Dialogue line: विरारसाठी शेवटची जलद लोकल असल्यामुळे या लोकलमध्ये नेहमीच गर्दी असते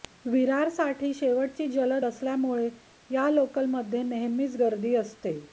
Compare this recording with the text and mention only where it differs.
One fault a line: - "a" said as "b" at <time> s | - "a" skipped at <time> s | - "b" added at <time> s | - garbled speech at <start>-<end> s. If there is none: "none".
- "लोकल" skipped at 2.0 s